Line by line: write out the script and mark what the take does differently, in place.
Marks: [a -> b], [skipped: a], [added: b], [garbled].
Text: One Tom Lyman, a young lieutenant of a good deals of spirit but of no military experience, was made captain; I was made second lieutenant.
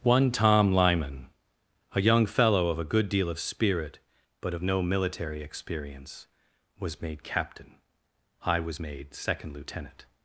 One Tom Lyman, a young [lieutenant -> fellow] of a good [deals -> deal] of spirit but of no military experience, was made captain; I was made second lieutenant.